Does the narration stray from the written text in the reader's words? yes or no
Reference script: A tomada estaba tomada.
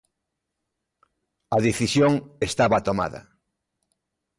yes